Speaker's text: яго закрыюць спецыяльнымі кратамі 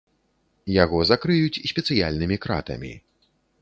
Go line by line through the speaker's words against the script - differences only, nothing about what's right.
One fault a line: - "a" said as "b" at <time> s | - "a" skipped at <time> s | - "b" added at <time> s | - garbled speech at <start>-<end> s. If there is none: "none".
none